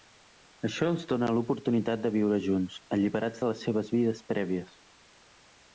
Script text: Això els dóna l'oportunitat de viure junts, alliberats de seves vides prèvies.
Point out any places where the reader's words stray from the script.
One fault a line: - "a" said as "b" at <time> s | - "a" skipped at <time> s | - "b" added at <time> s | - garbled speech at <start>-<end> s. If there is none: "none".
- "les" added at 3.5 s